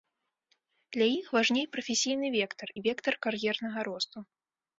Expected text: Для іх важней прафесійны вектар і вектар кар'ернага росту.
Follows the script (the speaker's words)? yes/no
yes